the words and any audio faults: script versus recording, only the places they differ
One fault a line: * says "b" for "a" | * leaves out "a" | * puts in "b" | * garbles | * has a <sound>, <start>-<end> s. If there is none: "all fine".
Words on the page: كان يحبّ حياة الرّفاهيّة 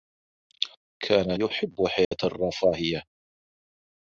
* has a dropout, 2.0-2.1 s